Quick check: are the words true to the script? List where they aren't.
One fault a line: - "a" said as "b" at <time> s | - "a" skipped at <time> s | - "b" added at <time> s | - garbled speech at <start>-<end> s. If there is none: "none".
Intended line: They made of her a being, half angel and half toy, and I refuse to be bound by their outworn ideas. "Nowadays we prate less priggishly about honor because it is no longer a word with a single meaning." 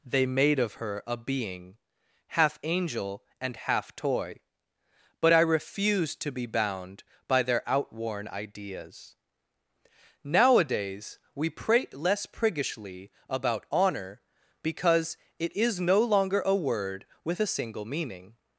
- "and" said as "but" at 5.2 s